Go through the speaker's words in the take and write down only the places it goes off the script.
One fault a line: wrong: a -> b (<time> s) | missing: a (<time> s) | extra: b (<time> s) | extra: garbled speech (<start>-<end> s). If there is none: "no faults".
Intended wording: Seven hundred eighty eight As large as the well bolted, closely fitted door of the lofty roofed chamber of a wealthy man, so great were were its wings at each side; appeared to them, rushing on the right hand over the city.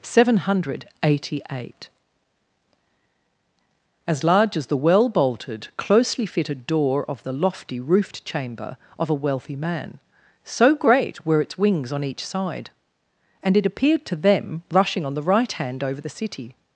missing: were (11.4 s)
wrong: at -> on (11.9 s)
extra: and it (13.4 s)